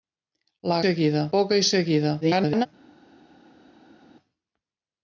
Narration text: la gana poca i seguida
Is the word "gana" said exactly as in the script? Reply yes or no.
no